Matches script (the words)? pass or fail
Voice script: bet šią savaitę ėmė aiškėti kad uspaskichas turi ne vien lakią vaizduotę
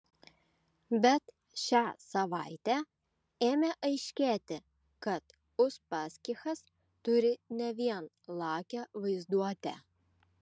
pass